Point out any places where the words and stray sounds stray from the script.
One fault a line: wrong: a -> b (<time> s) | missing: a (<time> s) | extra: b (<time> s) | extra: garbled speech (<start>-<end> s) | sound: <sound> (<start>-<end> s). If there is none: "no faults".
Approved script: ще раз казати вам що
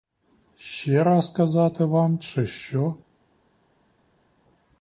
extra: чи (2.2 s)